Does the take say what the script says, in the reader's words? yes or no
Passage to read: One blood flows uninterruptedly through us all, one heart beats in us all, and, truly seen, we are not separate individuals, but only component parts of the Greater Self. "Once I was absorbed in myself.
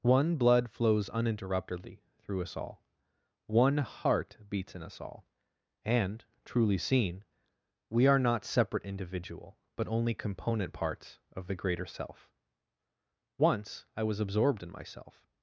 no